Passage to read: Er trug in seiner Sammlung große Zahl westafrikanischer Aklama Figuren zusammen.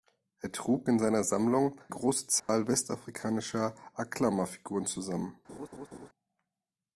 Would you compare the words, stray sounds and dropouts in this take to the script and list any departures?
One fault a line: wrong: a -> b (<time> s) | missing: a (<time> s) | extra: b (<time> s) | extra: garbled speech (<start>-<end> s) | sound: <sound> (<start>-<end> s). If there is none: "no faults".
sound: dropout (2.4-2.5 s)
sound: laugh (5.5-6.1 s)